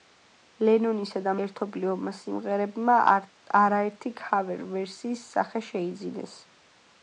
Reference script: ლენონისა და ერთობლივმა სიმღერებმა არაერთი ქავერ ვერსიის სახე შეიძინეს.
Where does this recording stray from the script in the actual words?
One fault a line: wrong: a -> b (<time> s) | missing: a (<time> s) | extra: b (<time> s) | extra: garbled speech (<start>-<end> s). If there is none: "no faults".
no faults